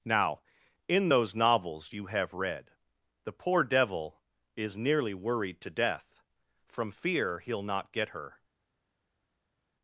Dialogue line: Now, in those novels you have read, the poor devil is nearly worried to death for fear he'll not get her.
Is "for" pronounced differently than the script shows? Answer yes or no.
yes